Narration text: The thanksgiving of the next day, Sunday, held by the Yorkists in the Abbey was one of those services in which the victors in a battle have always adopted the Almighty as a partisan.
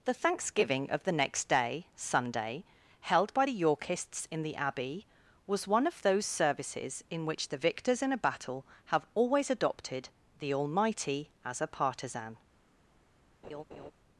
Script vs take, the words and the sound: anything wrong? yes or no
yes